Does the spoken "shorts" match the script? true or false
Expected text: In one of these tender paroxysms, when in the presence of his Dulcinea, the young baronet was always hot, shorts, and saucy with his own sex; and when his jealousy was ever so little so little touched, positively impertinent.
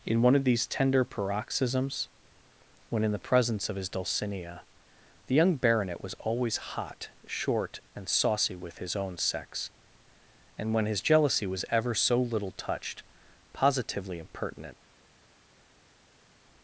false